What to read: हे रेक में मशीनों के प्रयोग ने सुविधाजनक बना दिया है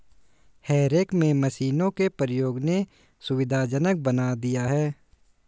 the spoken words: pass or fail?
pass